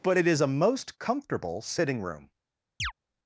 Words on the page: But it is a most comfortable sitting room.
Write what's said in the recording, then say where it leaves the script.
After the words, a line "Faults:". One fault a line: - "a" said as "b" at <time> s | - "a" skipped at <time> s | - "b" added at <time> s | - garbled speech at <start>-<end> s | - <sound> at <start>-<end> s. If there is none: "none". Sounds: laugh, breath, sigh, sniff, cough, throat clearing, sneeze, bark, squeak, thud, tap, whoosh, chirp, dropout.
But it is a most comfortable sitting room.
Faults:
- chirp at 2.8-2.9 s